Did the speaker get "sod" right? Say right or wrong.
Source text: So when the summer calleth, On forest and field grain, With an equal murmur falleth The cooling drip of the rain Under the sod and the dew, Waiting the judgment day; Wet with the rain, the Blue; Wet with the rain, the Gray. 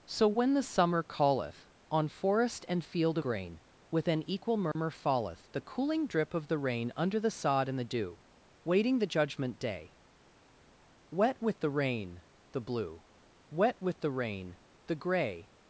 right